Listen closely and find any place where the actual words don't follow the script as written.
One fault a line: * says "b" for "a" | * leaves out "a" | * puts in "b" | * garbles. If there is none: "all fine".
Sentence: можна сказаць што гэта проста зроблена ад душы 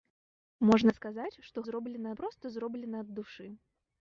* says "зроблена" for "гэта"